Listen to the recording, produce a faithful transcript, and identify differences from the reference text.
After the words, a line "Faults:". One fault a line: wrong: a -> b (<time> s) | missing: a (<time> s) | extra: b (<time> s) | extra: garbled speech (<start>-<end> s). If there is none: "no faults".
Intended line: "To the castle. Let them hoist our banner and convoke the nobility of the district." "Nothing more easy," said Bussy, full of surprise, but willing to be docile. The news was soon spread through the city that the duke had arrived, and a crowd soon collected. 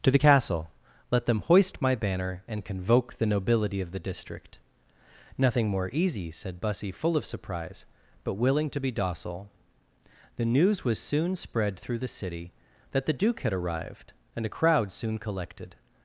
"To the castle. Let them hoist my banner and convoke the nobility of the district." "Nothing more easy," said Bussy, full of surprise, but willing to be docile. The news was soon spread through the city that the duke had arrived, and a crowd soon collected.
Faults:
wrong: our -> my (1.8 s)